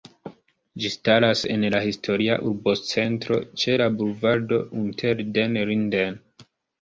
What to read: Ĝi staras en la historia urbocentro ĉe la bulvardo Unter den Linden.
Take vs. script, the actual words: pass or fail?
pass